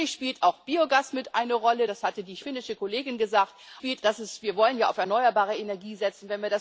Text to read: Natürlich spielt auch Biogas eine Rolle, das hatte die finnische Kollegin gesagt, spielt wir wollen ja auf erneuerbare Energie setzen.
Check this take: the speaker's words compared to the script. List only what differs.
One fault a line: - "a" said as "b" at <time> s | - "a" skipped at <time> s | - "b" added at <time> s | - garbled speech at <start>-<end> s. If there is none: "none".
none